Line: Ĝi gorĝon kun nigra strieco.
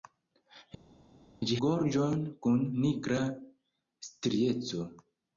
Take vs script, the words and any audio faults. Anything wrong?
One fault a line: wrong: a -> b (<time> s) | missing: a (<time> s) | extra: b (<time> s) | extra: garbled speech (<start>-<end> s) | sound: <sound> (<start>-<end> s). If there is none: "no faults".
no faults